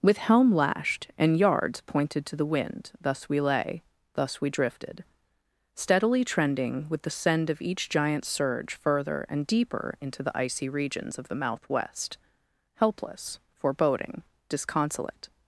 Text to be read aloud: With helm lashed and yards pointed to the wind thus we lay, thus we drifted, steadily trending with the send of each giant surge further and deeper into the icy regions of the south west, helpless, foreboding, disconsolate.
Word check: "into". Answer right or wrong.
right